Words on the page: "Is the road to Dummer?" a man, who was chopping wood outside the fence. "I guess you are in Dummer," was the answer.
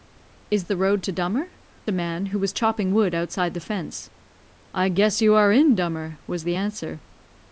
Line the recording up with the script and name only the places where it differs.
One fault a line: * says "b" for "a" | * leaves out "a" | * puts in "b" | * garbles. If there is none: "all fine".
all fine